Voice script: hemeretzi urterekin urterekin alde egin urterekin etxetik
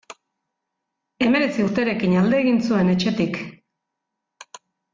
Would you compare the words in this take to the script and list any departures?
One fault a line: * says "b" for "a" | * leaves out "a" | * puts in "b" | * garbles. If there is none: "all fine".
* leaves out "urterekin"
* says "zuen" for "urterekin"